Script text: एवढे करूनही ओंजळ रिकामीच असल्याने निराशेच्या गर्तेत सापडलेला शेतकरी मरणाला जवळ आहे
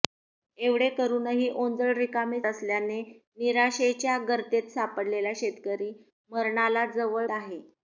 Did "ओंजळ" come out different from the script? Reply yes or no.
no